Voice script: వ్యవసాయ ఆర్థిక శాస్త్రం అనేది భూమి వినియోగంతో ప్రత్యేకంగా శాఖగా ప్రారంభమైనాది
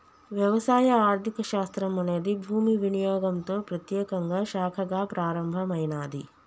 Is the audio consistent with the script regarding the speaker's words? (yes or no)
yes